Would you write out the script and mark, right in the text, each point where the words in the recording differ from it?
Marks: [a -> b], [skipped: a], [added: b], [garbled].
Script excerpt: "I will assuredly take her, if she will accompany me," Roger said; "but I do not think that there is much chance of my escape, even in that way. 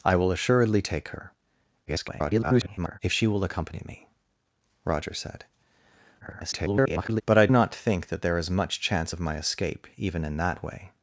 "I will assuredly take her, [garbled] if she will accompany me," Roger said; [garbled] "but I [skipped: do] not think that there is much chance of my escape, even in that way.